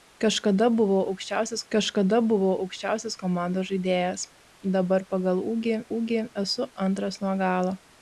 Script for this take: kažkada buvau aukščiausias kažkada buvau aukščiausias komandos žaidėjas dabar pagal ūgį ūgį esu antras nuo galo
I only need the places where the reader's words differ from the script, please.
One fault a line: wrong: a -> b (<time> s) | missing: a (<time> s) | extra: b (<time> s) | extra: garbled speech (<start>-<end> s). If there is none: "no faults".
no faults